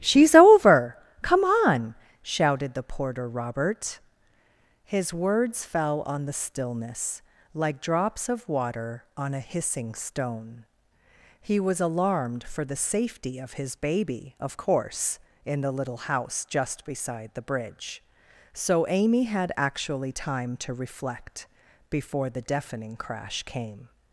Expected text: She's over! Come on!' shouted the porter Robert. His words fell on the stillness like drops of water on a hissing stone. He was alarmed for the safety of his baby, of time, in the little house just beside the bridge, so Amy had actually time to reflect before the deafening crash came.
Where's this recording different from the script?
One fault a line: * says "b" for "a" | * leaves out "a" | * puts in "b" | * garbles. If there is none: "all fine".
* says "course" for "time"